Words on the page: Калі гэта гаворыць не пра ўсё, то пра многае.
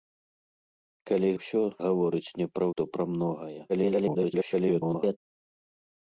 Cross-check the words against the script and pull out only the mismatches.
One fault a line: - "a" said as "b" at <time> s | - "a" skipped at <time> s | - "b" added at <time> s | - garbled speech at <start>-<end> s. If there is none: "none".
- "гэта" said as "ўсё" at 1.4 s
- "ўсё" skipped at 2.7 s
- garbled speech at 3.7-5.2 s